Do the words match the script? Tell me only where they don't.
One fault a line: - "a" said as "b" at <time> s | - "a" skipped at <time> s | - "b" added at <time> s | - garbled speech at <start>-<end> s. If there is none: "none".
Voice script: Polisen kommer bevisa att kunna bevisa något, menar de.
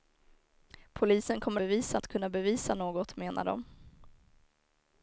none